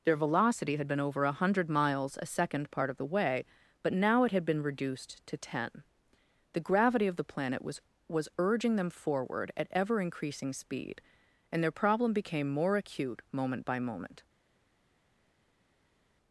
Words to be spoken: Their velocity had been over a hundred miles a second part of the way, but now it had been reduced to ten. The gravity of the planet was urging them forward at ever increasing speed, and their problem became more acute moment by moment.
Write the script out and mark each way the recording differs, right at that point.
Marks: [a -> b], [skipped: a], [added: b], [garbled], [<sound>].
Their velocity had been over a hundred miles a second part of the way, but now it had been reduced to ten. The gravity of the planet was [added: was] urging them forward at ever increasing speed, and their problem became more acute moment by moment.